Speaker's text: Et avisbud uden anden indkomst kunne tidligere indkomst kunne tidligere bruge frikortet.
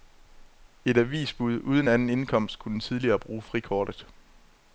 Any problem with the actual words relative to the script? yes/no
yes